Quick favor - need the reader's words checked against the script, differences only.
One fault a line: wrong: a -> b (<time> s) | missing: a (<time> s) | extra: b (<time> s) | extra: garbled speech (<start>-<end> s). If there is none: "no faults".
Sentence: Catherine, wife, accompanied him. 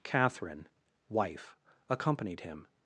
no faults